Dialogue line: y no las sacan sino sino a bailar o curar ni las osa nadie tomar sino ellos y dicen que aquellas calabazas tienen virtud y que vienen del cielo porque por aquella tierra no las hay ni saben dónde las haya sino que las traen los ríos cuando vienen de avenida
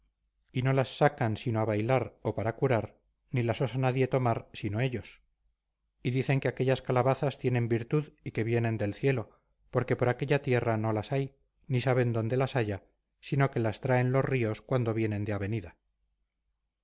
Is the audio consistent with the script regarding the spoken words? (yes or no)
no